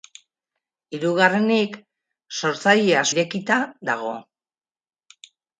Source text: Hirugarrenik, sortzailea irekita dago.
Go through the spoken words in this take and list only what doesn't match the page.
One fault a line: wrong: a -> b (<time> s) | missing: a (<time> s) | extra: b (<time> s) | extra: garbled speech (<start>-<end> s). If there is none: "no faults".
no faults